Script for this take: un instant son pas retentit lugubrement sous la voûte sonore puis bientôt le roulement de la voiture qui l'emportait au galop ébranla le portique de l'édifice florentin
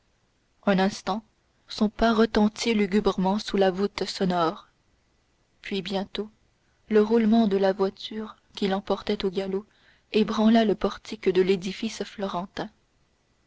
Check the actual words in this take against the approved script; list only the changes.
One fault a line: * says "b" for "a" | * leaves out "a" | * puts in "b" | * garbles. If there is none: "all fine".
all fine